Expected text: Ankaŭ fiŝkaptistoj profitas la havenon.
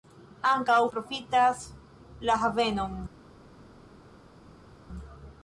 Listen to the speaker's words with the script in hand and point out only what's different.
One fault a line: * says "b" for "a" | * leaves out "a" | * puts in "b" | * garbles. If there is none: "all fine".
* leaves out "fiŝkaptistoj"